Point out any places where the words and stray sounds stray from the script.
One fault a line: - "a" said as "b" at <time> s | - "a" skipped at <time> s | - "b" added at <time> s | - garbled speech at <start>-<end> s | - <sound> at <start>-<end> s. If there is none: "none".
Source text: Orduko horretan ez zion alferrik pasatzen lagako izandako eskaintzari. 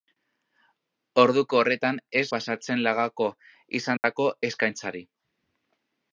- "zion alferrik" skipped at 2.2 s
- dropout at 4.0-4.0 s